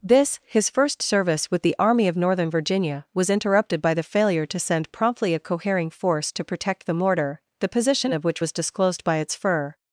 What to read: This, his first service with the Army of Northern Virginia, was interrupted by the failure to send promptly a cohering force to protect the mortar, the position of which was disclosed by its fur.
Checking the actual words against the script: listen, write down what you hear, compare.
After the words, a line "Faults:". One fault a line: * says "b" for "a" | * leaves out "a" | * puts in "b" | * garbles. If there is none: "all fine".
This, his first service with the Army of Northern Virginia, was interrupted by the failure to send promptly a cohering force to protect the mortar, the position of which was disclosed by its fur.
Faults:
all fine